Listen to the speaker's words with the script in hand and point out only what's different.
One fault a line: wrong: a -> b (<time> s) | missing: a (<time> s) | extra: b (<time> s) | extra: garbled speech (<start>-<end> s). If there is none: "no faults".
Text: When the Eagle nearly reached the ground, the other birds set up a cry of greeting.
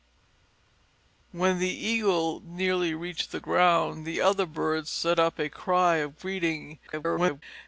extra: garbled speech (6.9-7.4 s)